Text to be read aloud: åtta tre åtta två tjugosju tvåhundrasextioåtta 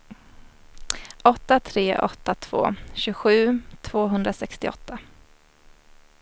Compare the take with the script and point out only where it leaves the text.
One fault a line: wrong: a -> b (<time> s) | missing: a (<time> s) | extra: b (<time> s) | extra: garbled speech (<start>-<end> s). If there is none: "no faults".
no faults